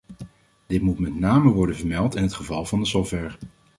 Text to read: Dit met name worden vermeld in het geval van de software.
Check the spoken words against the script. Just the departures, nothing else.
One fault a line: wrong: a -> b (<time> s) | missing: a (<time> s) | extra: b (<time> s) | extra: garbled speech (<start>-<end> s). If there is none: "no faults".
extra: moet (0.8 s)